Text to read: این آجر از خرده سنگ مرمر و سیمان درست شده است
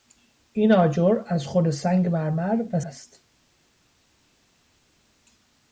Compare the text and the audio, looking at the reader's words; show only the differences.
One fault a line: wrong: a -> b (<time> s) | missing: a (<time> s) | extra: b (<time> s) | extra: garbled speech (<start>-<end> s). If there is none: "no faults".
missing: سیمان درست شده (2.8 s)